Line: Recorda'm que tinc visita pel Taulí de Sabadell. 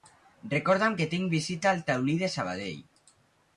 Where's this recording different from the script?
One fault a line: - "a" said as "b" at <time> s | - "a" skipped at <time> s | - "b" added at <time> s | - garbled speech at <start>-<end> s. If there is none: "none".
- "pel" said as "al" at 1.7 s